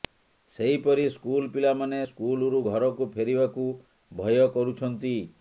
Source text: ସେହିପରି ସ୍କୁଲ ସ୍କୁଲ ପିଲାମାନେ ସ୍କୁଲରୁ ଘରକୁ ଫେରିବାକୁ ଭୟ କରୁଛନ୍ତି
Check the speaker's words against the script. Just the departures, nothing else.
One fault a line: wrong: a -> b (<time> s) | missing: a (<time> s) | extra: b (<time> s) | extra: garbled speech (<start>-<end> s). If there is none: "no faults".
missing: ସ୍କୁଲ (1.5 s)